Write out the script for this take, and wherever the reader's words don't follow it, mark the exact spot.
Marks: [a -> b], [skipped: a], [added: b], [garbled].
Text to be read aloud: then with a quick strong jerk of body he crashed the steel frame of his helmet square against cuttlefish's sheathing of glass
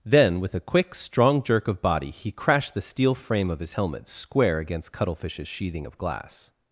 then with a quick strong jerk of body he crashed the steel frame of his helmet square against cuttlefish's sheathing of glass